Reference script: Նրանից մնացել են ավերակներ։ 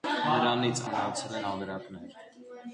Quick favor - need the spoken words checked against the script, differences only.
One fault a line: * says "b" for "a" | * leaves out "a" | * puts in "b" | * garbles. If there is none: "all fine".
all fine